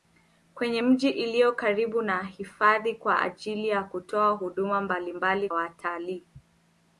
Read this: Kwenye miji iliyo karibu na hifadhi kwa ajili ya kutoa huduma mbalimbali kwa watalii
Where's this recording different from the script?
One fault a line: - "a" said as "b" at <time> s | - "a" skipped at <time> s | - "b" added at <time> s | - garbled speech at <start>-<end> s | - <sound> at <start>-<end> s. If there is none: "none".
- "kwa" skipped at 5.5 s